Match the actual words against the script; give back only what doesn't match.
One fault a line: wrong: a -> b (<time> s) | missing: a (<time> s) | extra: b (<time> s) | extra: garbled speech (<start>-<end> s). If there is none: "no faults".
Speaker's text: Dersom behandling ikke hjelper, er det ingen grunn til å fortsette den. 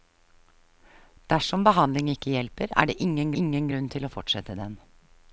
extra: ingen (3.4 s)